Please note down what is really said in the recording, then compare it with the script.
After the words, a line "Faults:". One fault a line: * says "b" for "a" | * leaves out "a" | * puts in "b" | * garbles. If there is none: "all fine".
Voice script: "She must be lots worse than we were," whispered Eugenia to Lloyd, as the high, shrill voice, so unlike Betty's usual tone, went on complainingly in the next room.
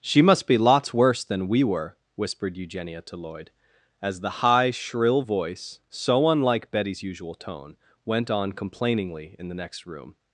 "She must be lots worse than we were," whispered Eugenia to Lloyd, as the high, shrill voice, so unlike Betty's usual tone, went on complainingly in the next room.
Faults:
all fine